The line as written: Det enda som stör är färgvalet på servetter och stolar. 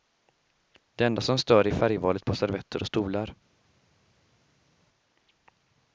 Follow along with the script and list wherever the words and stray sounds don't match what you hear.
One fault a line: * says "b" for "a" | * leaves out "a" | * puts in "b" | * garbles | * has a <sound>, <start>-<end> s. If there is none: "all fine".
all fine